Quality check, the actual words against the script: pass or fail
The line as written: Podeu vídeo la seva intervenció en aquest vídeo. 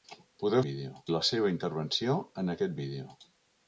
pass